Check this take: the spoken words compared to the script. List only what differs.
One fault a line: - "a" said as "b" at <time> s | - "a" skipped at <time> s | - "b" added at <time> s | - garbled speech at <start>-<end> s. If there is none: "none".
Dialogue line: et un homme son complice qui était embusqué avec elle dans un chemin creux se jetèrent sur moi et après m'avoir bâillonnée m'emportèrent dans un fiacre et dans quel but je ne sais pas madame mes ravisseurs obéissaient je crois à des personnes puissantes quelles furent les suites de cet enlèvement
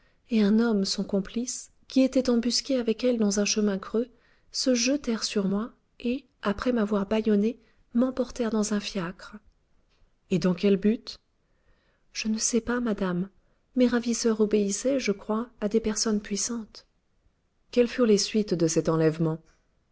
none